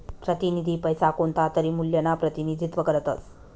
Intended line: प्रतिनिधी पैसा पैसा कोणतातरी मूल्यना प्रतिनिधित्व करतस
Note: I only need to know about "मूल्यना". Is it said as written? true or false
true